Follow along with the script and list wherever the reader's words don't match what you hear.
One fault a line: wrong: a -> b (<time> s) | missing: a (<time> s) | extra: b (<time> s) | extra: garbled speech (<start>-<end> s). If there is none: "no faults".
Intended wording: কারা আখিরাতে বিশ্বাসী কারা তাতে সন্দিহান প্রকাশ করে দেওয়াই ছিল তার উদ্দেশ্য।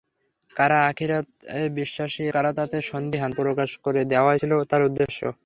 no faults